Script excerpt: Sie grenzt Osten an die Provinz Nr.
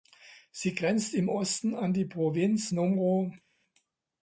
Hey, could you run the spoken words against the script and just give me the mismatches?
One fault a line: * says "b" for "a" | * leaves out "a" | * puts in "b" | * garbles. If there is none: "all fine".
* puts in "im"